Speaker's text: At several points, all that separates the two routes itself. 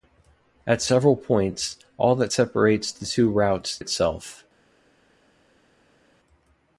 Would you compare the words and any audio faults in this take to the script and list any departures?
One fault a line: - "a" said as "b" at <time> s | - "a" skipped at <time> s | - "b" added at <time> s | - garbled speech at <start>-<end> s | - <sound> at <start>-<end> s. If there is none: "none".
none